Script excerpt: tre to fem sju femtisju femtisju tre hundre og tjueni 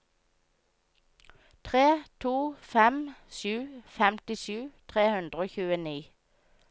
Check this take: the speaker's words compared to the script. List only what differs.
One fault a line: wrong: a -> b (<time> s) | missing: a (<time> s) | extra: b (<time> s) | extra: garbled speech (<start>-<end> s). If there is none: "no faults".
missing: femtisju (4.6 s)